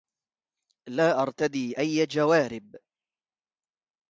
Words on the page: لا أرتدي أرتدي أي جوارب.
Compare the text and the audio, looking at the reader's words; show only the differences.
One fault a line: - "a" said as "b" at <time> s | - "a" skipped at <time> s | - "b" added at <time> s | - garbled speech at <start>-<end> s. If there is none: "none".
- "أرتدي" skipped at 1.8 s